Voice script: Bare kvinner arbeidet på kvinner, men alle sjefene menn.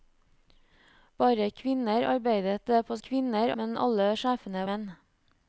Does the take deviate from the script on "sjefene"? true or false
false